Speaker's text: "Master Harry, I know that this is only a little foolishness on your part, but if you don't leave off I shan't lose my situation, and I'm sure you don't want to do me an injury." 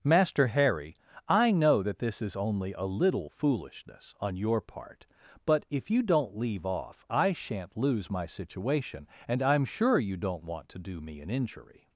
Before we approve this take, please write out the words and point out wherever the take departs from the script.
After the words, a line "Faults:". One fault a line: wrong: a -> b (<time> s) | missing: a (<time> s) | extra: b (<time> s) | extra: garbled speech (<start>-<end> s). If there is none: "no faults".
"Master Harry, I know that this is only a little foolishness on your part, but if you don't leave off I shan't lose my situation, and I'm sure you don't want to do me an injury."
Faults:
no faults